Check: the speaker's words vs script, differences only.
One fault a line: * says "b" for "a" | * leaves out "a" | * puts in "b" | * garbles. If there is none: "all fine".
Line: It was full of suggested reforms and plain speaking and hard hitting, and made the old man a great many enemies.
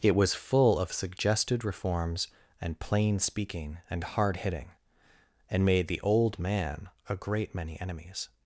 all fine